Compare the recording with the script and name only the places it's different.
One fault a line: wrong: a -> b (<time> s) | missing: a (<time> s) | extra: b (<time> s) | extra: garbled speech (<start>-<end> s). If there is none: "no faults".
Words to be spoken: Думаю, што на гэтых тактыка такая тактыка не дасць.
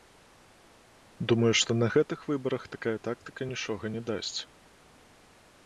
wrong: тактыка -> выбарах (2.3 s)
extra: нічога (3.5 s)